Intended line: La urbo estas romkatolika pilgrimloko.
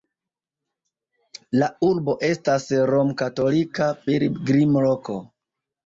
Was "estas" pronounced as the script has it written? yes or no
yes